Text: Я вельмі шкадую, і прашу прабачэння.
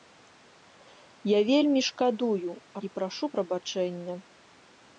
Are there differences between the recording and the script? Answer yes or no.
no